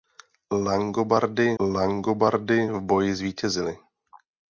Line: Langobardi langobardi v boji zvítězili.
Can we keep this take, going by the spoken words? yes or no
yes